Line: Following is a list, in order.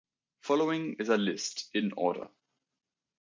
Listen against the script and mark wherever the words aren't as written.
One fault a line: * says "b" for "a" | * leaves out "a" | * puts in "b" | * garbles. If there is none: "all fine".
all fine